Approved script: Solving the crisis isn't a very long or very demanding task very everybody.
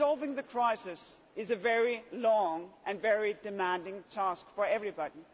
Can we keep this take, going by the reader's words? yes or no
no